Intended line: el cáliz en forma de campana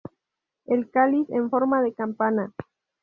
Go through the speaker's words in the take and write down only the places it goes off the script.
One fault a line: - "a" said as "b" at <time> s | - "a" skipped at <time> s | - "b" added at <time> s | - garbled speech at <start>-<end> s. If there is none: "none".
none